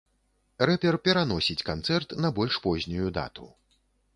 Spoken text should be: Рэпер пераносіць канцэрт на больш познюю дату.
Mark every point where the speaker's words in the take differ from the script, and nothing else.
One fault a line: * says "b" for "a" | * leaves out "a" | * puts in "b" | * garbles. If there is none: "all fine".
all fine